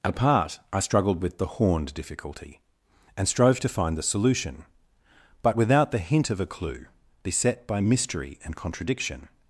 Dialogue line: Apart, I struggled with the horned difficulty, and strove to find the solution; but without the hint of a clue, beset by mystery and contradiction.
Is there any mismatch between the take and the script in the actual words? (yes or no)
no